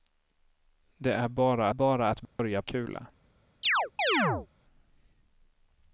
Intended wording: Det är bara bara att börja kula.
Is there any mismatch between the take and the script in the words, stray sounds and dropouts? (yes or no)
yes